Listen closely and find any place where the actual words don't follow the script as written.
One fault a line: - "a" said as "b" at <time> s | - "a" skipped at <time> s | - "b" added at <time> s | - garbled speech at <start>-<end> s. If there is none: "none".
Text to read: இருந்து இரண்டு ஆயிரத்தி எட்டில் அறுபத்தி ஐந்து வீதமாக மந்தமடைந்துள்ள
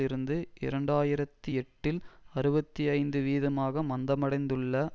none